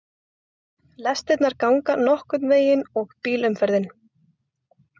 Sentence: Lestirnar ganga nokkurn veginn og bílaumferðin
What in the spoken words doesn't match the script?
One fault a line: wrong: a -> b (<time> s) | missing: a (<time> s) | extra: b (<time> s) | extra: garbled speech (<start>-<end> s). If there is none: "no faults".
no faults